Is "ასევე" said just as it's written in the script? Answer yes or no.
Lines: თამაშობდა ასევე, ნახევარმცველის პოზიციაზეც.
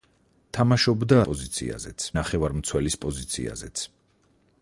no